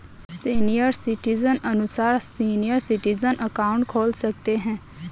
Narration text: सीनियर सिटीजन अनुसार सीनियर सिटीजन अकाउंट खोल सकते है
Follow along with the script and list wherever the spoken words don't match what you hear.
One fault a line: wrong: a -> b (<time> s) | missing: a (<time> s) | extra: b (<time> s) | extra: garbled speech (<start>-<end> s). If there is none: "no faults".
no faults